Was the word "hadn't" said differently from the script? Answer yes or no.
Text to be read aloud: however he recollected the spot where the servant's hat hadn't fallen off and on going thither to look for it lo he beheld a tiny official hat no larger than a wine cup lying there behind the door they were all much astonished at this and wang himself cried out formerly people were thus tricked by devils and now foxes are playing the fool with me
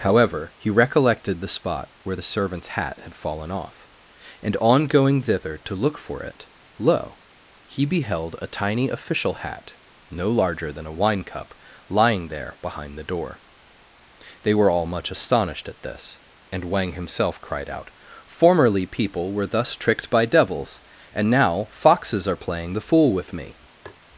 yes